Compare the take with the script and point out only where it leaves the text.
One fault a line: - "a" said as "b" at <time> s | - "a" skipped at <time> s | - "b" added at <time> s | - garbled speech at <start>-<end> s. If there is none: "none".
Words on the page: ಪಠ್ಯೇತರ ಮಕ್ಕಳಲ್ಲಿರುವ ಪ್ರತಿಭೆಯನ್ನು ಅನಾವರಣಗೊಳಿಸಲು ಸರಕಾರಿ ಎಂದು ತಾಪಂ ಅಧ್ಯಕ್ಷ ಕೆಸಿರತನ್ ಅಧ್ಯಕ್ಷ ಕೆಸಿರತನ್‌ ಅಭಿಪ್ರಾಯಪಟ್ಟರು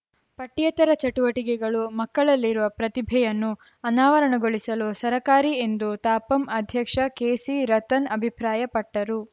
- "ಚಟುವಟಿಕೆಗಳು" added at 1.0 s
- "ಅಧ್ಯಕ್ಷ ಕೆಸಿರತನ್" skipped at 8.1 s